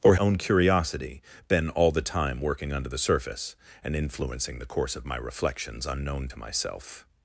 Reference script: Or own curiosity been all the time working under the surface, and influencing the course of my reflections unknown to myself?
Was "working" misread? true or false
false